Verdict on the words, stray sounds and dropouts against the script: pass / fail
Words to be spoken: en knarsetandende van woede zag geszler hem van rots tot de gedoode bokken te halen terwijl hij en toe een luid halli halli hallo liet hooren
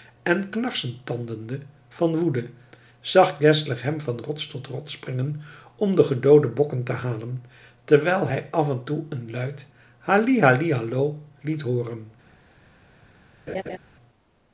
fail